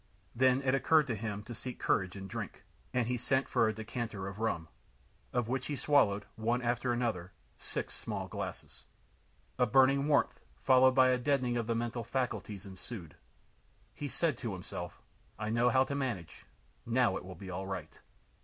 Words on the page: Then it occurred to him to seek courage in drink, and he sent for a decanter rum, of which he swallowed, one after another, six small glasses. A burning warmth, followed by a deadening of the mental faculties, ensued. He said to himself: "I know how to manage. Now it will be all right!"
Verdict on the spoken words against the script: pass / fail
fail